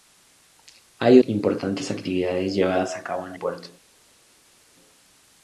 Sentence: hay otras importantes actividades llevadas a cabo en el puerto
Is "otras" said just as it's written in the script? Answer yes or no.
no